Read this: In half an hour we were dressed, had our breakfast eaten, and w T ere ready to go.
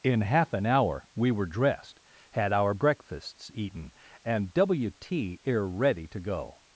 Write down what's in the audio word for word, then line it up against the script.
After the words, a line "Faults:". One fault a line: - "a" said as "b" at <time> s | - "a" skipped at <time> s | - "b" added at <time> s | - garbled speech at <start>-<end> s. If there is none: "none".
In half an hour we were dressed, had our breakfasts eaten, and w T ere ready to go.
Faults:
- "breakfast" said as "breakfasts" at 2.7 s